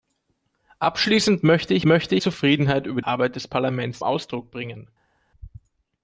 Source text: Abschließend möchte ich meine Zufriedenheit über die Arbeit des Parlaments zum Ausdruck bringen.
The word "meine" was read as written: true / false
false